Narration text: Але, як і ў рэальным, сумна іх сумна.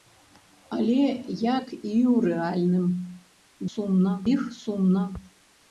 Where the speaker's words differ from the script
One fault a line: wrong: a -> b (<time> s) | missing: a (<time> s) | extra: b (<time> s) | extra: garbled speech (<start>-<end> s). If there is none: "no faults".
no faults